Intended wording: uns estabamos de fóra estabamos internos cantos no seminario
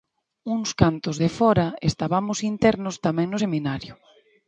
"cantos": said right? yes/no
no